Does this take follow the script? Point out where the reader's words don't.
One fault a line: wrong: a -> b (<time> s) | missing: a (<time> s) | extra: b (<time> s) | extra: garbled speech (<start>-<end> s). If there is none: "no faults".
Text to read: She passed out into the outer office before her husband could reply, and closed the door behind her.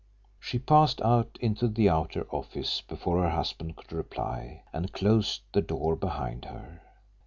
no faults